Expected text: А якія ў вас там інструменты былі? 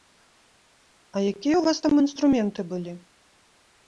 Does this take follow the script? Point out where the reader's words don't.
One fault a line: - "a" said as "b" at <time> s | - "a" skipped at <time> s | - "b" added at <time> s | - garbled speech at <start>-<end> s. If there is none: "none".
none